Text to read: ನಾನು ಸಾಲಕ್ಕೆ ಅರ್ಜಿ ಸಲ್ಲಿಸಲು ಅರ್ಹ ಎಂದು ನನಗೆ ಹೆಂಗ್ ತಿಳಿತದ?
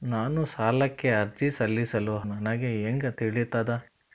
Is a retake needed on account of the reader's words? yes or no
yes